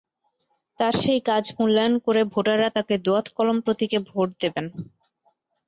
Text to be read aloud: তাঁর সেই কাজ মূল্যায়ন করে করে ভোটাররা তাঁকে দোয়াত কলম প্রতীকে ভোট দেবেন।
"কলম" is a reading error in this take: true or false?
false